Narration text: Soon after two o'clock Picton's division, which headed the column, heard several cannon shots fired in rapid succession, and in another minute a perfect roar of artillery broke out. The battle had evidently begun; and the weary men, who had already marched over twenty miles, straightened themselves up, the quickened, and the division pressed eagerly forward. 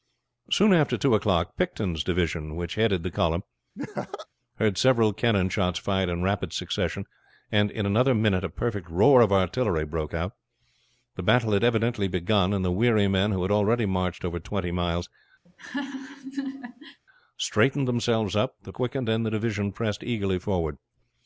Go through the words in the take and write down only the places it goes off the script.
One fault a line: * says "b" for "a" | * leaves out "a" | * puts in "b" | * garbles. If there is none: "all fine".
all fine